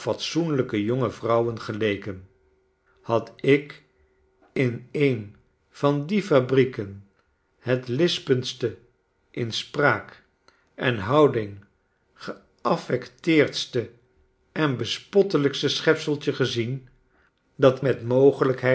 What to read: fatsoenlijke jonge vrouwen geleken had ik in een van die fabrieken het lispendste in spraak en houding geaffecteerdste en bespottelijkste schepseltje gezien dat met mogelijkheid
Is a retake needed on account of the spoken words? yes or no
no